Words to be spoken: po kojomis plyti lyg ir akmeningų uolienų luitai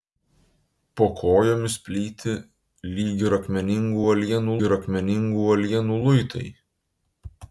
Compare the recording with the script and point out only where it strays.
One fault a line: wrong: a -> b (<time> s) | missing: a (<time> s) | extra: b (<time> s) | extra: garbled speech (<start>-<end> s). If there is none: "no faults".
extra: ir akmeningų uolienų (4.6 s)